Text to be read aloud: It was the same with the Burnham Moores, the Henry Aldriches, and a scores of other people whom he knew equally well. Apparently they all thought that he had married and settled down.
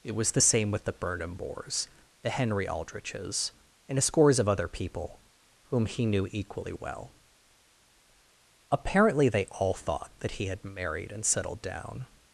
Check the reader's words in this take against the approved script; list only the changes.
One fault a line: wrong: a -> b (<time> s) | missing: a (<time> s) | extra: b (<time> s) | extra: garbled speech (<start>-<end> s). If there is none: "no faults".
no faults